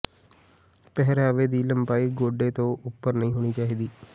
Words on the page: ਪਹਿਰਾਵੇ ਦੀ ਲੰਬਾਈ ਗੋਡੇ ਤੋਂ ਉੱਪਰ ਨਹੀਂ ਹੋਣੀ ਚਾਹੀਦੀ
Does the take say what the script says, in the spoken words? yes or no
yes